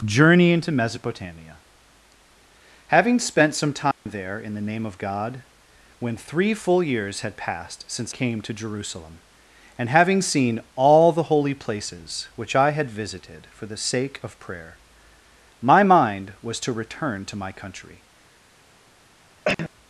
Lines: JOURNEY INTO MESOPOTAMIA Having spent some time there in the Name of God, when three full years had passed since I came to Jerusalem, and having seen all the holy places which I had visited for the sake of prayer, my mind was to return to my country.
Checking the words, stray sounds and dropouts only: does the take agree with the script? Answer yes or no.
no